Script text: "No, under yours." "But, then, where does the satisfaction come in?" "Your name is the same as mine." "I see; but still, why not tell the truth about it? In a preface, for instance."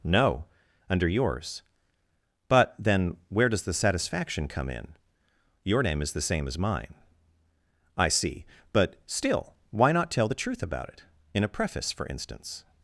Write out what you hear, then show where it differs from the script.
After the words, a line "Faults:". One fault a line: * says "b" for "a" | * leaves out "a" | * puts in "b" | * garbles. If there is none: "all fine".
"No, under yours." "But, then, where does the satisfaction come in?" "Your name is the same as mine." "I see; but still, why not tell the truth about it? In a preface, for instance."
Faults:
all fine